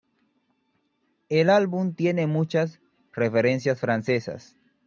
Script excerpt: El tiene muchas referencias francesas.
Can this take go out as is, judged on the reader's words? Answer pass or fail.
fail